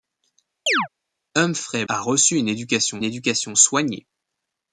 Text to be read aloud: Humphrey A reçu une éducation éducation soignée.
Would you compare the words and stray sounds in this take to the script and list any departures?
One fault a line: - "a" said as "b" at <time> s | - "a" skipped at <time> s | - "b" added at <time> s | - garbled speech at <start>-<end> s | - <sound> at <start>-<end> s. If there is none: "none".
- chirp at 0.7-0.9 s